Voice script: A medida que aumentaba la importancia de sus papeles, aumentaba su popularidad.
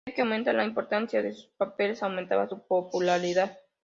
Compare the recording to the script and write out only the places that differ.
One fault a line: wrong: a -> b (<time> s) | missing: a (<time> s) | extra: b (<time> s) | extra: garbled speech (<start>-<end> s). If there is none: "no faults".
no faults